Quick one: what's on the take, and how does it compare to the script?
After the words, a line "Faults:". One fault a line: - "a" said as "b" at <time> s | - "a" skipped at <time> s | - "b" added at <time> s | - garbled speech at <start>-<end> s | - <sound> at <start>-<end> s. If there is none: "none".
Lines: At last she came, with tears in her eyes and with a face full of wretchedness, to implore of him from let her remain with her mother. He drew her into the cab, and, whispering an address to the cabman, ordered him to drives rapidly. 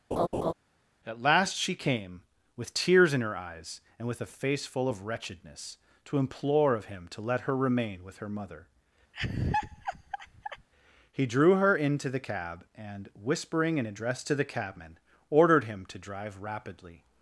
At last she came, with tears in her eyes and with a face full of wretchedness, to implore of him to let her remain with her mother. He drew her into the cab, and, whispering an address to the cabman, ordered him to drive rapidly.
Faults:
- laugh at 0.1-0.5 s
- "from" said as "to" at 7.1 s
- laugh at 9.1-10.7 s
- "drives" said as "drive" at 16.0 s